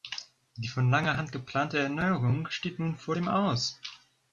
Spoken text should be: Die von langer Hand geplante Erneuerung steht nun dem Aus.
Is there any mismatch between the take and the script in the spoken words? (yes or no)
yes